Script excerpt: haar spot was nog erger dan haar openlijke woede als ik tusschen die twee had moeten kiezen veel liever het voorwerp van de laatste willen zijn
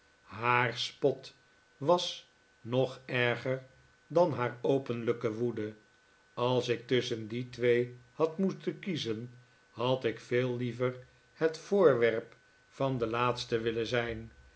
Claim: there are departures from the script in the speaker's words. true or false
true